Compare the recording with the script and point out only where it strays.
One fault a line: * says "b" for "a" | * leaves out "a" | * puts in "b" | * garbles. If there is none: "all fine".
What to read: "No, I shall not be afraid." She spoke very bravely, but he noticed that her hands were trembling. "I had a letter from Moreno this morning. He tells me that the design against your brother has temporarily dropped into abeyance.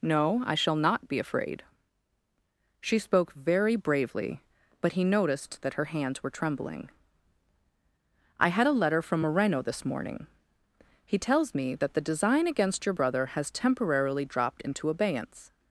all fine